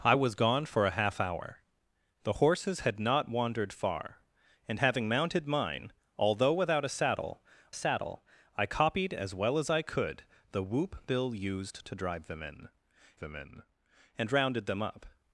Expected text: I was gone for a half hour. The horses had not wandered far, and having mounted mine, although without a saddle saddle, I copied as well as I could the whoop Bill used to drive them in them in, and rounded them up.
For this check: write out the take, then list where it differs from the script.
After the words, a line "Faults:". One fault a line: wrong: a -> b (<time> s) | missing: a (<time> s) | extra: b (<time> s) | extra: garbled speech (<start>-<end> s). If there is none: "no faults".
I was gone for a half hour. The horses had not wandered far, and having mounted mine, although without a saddle saddle, I copied as well as I could the whoop Bill used to drive them in them in, and rounded them up.
Faults:
no faults